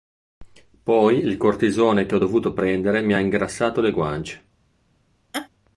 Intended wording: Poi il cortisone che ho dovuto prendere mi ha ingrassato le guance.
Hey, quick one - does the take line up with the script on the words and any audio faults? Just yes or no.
no